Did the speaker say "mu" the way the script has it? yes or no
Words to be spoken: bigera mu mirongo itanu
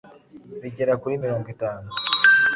no